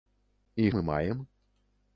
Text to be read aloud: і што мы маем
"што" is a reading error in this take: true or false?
true